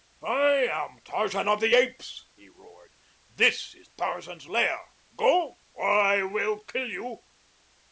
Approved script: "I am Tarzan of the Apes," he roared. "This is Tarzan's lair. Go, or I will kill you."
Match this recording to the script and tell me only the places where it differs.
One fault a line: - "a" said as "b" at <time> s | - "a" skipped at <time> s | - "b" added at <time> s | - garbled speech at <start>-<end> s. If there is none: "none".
none